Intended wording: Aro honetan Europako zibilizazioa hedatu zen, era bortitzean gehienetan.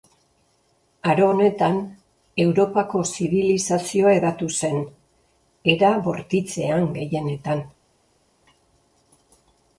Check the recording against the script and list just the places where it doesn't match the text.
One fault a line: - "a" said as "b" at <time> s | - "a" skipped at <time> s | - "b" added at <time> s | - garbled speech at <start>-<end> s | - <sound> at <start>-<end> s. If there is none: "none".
none